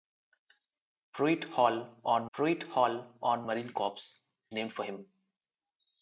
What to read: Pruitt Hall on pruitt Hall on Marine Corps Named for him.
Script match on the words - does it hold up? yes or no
yes